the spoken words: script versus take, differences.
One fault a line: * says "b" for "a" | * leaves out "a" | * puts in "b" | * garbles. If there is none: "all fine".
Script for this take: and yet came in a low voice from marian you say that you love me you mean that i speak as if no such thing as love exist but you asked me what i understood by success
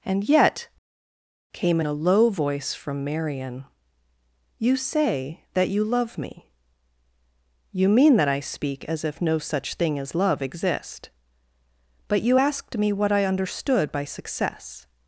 all fine